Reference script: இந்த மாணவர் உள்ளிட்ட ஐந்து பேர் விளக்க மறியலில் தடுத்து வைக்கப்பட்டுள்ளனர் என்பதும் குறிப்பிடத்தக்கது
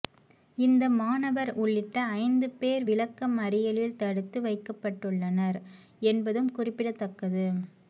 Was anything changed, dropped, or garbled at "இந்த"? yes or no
no